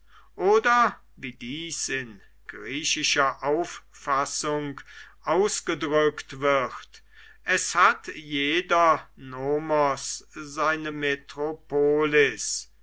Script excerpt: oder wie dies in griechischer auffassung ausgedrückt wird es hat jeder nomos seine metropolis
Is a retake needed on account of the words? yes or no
no